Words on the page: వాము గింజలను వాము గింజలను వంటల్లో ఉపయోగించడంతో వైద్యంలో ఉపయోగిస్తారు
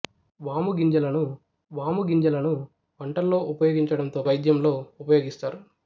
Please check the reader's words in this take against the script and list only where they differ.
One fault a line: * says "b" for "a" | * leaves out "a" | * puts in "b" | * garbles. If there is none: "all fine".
all fine